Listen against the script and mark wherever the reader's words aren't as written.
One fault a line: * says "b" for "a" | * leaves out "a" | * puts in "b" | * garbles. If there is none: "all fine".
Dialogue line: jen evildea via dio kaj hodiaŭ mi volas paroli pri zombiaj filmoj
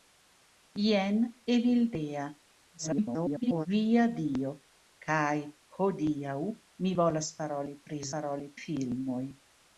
* garbles
* says "paroli" for "zombiaj"